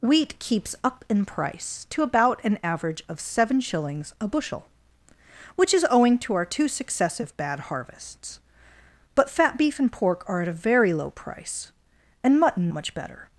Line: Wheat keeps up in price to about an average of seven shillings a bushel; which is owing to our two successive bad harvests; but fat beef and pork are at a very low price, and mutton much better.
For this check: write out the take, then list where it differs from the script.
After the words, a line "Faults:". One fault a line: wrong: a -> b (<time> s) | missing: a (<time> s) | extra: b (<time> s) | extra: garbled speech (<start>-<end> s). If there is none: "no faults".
Wheat keeps up in price to about an average of seven shillings a bushel; which is owing to our two successive bad harvests; but fat beef and pork are at a very low price, and mutton much better.
Faults:
no faults